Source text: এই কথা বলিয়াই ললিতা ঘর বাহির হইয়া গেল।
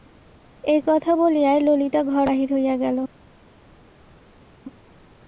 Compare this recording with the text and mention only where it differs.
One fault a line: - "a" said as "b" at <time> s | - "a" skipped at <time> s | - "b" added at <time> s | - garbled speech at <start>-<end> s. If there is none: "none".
none